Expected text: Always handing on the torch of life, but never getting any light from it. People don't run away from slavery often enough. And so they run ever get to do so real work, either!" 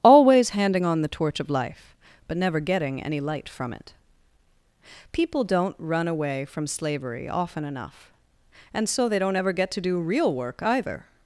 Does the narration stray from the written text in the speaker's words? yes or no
yes